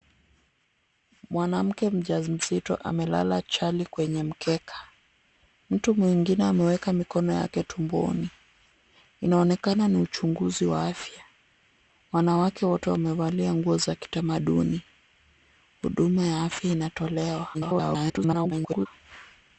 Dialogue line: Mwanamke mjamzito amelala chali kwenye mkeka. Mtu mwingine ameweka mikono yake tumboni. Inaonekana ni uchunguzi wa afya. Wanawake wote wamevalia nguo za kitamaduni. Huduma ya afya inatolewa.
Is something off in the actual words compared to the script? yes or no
yes